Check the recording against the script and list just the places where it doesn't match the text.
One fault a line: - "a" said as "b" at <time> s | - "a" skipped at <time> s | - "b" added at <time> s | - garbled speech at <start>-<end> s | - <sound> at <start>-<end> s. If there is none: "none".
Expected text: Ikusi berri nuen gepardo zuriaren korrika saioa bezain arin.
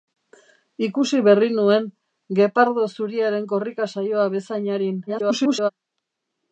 - garbled speech at 5.1-5.7 s